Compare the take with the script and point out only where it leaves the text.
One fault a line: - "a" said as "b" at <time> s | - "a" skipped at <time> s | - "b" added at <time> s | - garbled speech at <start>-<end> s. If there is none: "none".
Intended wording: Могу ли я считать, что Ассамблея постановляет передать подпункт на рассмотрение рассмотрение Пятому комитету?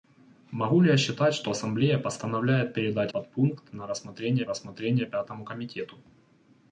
none